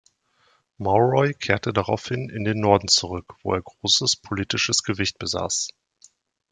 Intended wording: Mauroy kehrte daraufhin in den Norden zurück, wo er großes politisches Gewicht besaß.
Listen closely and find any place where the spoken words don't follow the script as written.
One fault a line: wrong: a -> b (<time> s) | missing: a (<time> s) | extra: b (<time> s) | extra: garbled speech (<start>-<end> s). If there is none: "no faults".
no faults